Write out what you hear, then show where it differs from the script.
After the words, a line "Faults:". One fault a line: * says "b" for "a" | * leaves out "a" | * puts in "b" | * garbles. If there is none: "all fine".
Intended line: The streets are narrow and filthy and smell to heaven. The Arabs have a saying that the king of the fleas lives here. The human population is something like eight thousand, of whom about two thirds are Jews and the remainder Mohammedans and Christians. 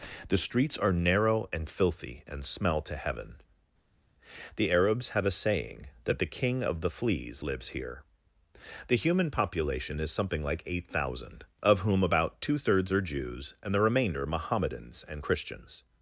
The streets are narrow and filthy and smell to heaven. The Arabs have a saying that the king of the fleas lives here. The human population is something like eight thousand, of whom about two thirds are Jews and the remainder Mohammedans and Christians.
Faults:
all fine